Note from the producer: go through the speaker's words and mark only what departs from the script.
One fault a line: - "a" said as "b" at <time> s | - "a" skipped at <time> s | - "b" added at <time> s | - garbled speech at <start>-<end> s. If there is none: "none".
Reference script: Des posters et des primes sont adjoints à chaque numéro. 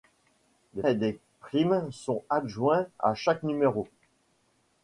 - "posters" skipped at 0.8 s